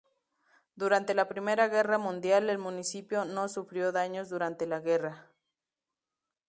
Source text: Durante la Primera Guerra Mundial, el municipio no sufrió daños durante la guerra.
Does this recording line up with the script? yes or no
yes